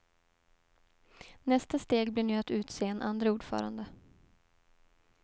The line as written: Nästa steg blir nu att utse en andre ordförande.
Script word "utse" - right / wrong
right